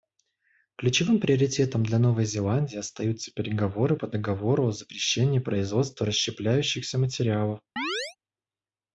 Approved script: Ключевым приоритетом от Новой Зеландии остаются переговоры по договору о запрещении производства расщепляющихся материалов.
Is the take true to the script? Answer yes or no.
no